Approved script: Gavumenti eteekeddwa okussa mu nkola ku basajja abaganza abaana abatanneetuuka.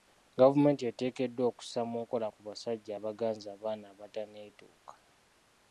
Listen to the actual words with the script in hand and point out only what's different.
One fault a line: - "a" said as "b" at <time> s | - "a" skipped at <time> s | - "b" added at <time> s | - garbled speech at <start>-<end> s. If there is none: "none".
none